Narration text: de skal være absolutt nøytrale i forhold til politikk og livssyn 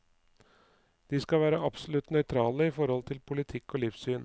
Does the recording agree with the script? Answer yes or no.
yes